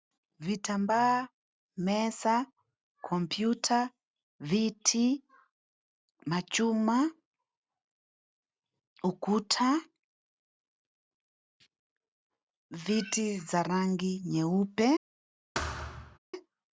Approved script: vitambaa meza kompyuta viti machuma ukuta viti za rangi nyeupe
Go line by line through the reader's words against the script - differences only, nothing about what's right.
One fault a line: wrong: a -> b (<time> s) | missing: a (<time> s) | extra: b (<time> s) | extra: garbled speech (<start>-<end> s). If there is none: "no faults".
no faults